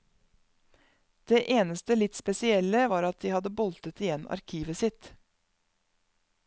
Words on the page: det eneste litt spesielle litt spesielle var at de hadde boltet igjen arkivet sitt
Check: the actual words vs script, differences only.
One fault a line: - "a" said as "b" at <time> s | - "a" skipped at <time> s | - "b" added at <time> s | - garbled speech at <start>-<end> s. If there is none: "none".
- "litt spesielle" skipped at 2.9 s